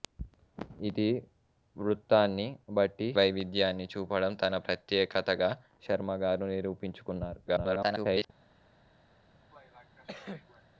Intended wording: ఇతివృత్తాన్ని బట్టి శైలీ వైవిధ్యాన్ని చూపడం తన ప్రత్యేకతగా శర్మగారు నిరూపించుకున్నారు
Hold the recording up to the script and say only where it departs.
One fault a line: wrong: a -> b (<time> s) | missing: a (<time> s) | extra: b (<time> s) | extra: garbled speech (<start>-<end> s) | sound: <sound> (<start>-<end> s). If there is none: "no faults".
missing: శైలీ (3.1 s)
extra: garbled speech (7.5-8.3 s)
sound: cough (9.5-10.6 s)